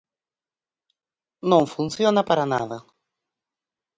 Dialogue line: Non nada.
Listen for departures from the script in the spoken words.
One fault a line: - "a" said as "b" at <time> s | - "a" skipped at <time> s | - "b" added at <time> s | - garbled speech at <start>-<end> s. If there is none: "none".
- "funciona para" added at 1.7 s